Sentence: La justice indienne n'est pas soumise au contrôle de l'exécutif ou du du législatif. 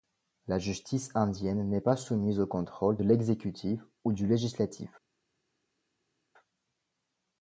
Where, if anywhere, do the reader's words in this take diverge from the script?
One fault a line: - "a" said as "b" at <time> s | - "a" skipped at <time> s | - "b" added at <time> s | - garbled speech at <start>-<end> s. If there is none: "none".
- "du" skipped at 4.3 s